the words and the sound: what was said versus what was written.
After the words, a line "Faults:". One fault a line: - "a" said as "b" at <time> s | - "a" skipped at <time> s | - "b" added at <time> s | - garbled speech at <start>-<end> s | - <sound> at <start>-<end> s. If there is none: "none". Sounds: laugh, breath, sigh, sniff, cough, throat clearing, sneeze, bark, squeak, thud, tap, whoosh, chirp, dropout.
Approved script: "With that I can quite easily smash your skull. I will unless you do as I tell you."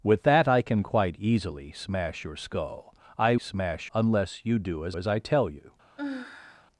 "With that I can quite easily smash your skull. I smash unless you do as as I tell you."
Faults:
- "will" said as "smash" at 3.4 s
- "as" added at 4.9 s
- sigh at 6.0-6.7 s